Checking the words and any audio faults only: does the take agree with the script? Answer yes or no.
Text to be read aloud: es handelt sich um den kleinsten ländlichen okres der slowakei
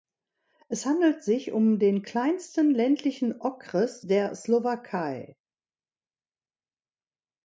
yes